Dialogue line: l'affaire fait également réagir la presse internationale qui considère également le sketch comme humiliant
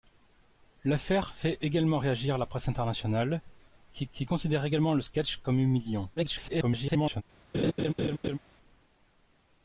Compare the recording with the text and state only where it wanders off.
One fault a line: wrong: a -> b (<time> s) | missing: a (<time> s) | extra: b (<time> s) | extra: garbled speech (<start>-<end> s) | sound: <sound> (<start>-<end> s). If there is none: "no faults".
extra: qui (4.1 s)
extra: garbled speech (6.2-7.2 s)
sound: laugh (7.5-8.4 s)